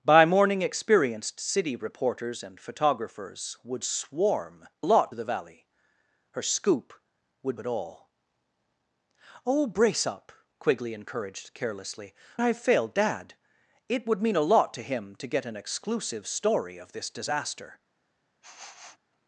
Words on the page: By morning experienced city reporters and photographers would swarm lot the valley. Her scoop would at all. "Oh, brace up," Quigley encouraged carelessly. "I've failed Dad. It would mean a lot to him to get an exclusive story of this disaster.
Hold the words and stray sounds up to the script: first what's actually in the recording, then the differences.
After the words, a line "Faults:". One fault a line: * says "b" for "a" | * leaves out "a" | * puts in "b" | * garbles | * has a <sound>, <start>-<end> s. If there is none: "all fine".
By morning experienced city reporters and photographers would swarm lot the valley. Her scoop would at all. "Oh, brace up," Quigley encouraged carelessly. "I've failed Dad. It would mean a lot to him to get an exclusive story of this disaster.
Faults:
* has a sniff, 18.4-19.0 s